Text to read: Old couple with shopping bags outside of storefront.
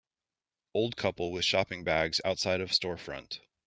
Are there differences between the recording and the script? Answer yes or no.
no